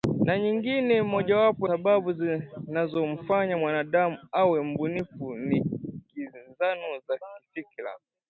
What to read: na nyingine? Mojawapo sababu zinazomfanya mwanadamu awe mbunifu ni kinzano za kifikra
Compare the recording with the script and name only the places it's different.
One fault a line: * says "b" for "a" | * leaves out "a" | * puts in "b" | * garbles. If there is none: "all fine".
all fine